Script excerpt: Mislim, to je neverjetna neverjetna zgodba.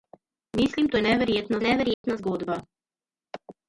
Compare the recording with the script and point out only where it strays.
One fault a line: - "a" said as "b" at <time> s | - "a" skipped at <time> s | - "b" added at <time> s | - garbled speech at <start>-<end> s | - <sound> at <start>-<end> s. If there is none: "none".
- dropout at 1.9-2.0 s